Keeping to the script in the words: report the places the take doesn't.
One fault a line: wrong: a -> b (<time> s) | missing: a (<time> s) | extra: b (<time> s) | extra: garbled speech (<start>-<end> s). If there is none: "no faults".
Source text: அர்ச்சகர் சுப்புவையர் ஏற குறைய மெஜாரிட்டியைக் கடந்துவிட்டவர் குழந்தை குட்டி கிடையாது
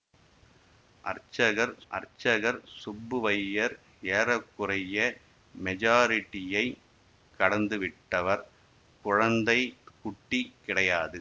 extra: அர்ச்சகர் (1.9 s)